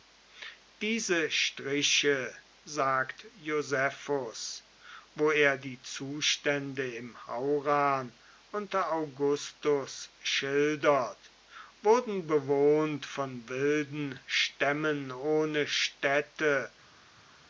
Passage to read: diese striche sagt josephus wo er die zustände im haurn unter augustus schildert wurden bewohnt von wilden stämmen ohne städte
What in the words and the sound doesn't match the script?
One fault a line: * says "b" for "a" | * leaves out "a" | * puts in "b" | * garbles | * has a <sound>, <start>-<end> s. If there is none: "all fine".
all fine